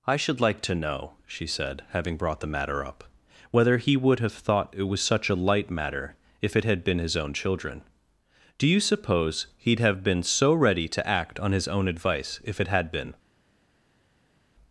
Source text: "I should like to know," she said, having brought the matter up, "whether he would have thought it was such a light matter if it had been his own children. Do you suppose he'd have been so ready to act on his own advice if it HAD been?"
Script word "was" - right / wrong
right